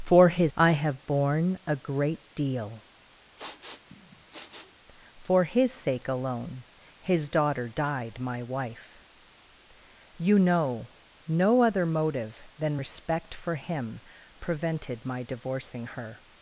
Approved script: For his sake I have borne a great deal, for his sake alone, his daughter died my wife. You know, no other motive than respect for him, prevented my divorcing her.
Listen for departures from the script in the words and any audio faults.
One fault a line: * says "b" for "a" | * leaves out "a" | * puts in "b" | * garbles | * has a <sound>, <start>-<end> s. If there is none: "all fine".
* leaves out "sake"
* has a sniff, 3.4-4.7 s